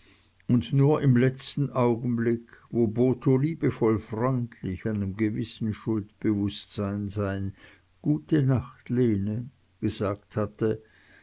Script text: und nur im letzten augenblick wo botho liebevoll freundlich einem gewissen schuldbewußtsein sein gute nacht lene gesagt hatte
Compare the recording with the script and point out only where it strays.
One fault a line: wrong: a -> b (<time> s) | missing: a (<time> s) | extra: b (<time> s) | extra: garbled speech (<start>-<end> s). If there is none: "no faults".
no faults